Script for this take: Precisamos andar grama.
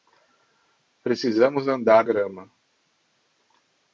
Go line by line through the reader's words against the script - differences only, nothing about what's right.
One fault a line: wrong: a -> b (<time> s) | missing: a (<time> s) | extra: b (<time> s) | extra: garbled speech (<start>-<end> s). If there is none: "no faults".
no faults